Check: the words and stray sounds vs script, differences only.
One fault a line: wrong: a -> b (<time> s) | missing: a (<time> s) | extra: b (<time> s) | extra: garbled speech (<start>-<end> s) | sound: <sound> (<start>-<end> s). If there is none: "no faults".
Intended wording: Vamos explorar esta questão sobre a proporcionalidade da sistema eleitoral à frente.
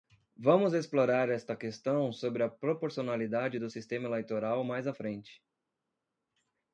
wrong: da -> do (3.6 s)
extra: mais (4.6 s)